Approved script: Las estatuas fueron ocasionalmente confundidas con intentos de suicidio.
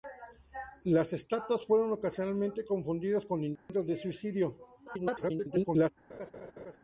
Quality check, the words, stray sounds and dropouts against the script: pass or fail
fail